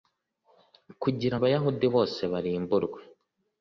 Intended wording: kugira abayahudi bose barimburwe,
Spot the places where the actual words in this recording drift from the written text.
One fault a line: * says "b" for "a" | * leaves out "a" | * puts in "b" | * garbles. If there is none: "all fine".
all fine